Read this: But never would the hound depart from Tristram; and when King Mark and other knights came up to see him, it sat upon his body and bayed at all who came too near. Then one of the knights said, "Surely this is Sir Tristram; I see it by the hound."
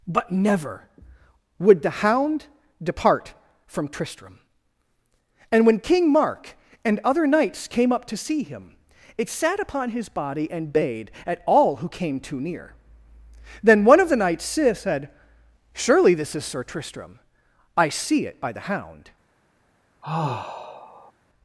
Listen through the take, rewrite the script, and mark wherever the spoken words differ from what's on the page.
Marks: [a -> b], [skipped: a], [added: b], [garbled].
But never would the hound depart from Tristram; and when King Mark and other knights came up to see him, it sat upon his body and bayed at all who came too near. Then one of the knights said, "Surely this is Sir Tristram; I see it by the hound."